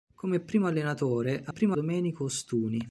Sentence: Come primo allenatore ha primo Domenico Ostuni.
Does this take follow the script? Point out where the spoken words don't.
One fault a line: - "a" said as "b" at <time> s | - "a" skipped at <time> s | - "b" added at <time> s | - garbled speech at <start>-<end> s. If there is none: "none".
none